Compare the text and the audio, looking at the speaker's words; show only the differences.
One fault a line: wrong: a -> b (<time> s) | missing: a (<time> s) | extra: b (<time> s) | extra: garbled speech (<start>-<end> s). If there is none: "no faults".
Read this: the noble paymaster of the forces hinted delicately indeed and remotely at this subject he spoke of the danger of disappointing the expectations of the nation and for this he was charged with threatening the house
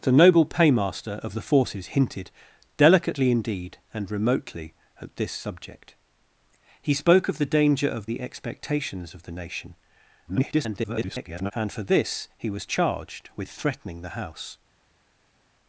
missing: disappointing (8.1 s)
extra: garbled speech (10.3-11.5 s)